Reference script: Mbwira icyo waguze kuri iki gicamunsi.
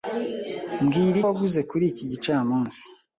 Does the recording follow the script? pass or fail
fail